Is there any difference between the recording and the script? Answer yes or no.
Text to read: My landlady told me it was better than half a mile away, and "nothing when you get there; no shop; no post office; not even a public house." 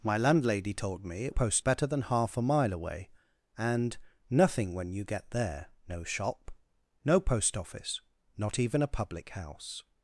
yes